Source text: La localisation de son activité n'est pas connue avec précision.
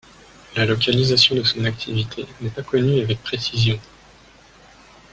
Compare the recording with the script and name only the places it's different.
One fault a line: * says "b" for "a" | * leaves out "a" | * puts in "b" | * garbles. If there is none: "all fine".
all fine